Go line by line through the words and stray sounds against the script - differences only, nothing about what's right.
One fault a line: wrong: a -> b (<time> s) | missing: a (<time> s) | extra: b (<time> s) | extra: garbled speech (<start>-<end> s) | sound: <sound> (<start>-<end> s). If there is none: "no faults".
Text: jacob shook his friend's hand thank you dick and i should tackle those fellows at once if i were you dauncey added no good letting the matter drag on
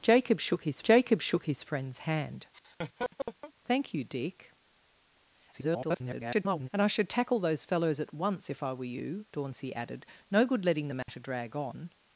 extra: jacob shook his (0.8 s)
sound: laugh (2.5-3.5 s)
extra: garbled speech (5.5-6.7 s)
sound: dropout (11.0-11.1 s)